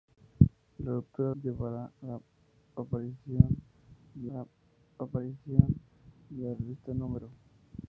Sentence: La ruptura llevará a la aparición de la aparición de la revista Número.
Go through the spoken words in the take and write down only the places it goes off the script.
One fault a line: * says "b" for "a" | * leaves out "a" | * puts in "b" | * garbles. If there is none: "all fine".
all fine